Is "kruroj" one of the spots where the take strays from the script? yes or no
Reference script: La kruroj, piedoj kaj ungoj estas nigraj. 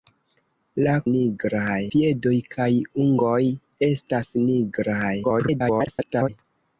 yes